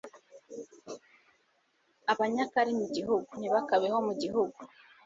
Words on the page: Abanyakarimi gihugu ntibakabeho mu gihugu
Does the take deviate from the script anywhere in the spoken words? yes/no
no